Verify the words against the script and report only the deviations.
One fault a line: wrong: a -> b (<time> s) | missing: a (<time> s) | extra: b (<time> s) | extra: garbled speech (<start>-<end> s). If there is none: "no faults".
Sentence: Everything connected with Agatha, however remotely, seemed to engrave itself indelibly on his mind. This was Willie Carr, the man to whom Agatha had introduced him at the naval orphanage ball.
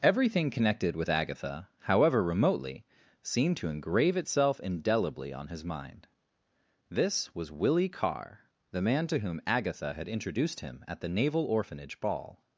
no faults